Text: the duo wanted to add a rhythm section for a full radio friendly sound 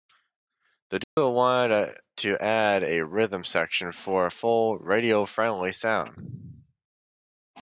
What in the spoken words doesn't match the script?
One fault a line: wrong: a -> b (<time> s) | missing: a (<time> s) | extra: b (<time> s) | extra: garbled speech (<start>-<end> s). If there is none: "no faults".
no faults